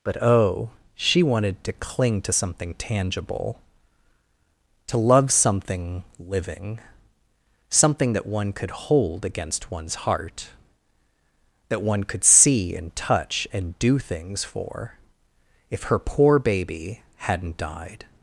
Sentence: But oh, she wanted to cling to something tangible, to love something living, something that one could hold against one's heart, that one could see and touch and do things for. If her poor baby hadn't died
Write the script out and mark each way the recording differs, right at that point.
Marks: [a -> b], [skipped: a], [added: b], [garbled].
But oh, she wanted to cling to something tangible, to love something living, something that one could hold against one's heart, that one could see and touch and do things for. If her poor baby hadn't died